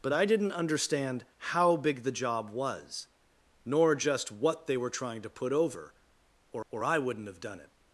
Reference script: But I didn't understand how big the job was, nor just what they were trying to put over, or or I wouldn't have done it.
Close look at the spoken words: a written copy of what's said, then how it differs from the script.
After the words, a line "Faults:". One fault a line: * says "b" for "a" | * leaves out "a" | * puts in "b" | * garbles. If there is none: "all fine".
But I didn't understand how big the job was, nor just what they were trying to put over, or or I wouldn't have done it.
Faults:
all fine